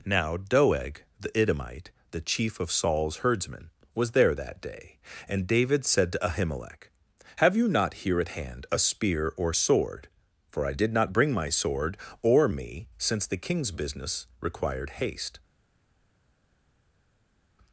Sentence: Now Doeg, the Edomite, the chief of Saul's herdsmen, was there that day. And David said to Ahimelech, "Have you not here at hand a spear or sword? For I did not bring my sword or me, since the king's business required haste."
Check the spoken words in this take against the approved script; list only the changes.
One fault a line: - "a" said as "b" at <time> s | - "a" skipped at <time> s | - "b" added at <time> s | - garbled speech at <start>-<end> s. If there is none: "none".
none